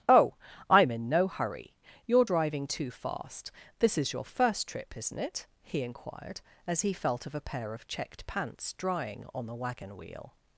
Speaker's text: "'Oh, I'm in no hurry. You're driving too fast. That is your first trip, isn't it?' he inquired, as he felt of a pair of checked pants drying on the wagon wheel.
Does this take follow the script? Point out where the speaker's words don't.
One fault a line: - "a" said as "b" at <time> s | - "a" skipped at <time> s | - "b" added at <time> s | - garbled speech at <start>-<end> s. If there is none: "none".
- "That" said as "This" at 3.8 s